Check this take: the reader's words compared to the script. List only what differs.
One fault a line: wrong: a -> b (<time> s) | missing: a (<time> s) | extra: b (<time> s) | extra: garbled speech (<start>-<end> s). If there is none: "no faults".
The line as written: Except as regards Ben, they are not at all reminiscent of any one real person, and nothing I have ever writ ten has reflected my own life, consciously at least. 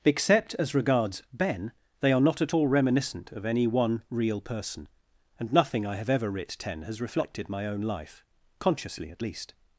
no faults